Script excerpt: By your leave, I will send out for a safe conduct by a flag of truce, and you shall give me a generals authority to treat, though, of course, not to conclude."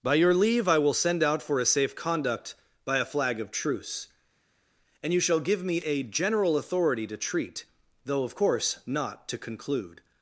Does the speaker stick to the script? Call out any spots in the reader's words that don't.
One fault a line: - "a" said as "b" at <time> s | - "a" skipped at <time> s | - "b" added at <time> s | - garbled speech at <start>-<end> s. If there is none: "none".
- "generals" said as "general" at 6.0 s